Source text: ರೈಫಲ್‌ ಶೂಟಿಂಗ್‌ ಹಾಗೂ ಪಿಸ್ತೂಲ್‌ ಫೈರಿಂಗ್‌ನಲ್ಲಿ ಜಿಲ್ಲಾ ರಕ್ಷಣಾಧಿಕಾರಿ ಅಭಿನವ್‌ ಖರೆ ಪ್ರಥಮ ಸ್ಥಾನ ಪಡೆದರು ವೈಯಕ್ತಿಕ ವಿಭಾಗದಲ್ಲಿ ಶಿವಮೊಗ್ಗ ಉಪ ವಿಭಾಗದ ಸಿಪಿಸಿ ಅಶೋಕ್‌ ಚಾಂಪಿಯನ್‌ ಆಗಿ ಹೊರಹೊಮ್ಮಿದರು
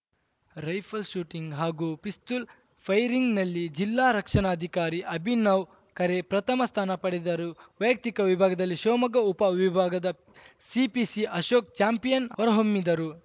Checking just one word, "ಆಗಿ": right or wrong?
wrong